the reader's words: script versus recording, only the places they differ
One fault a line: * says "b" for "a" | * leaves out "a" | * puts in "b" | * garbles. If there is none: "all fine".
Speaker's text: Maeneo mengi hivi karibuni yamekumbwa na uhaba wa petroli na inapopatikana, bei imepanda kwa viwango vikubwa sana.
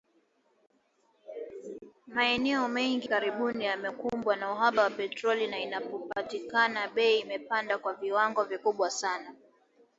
* leaves out "hivi"